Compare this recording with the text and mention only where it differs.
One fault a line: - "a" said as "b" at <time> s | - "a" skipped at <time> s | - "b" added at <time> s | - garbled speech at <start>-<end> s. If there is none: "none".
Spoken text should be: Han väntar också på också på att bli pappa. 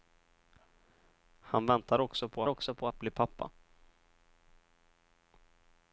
none